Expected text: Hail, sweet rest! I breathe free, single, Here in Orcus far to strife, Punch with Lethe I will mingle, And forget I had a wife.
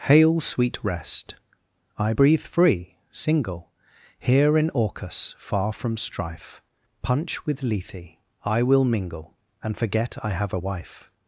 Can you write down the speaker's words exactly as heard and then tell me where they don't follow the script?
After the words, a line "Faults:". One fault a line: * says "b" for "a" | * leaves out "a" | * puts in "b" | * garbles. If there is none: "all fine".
Hail, sweet rest! I breathe free, single, Here in Orcus far from strife, Punch with Lethe I will mingle, And forget I have a wife.
Faults:
* says "from" for "to"
* says "have" for "had"